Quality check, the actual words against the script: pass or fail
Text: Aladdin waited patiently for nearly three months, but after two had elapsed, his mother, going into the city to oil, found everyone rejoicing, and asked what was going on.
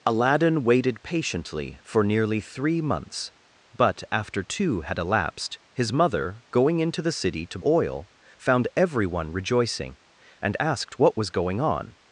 pass